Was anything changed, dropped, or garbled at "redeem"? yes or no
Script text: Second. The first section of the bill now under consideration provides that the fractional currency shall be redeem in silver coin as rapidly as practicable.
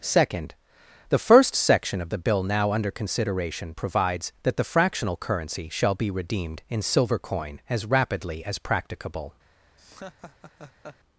yes